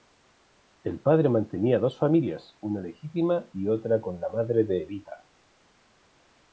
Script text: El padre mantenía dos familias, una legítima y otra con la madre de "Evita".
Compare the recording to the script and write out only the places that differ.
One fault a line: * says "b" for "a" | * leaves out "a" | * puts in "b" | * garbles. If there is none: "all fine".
all fine